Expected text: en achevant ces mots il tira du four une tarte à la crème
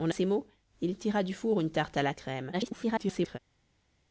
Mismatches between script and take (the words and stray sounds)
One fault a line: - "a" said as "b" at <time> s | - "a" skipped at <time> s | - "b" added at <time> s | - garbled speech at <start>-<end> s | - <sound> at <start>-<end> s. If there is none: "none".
- "achevant" skipped at 0.1 s
- garbled speech at 2.5-3.4 s